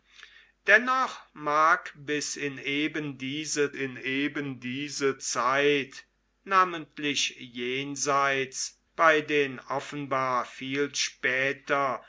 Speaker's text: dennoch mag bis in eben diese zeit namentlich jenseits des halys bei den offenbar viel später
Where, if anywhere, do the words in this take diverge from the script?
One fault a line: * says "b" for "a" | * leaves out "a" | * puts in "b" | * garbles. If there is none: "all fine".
* puts in "in eben diese"
* leaves out "des halys"